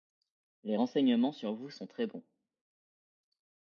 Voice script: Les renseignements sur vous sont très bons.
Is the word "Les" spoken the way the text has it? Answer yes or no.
yes